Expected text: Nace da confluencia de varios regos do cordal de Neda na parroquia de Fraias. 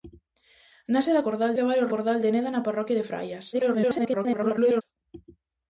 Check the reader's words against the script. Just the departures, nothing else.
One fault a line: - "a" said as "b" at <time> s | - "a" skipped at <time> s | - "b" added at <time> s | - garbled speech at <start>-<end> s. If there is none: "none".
- "confluencia" said as "cordal" at 1.3 s
- "regos do" skipped at 1.9 s
- garbled speech at 3.5-4.8 s